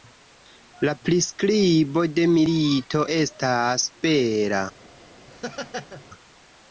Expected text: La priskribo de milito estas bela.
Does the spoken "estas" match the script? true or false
true